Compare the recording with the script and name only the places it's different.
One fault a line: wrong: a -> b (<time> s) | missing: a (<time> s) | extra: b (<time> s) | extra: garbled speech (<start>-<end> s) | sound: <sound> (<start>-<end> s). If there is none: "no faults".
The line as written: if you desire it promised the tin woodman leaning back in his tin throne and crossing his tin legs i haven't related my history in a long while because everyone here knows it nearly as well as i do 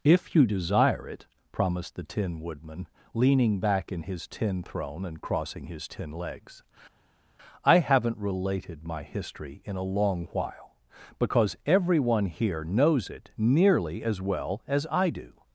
no faults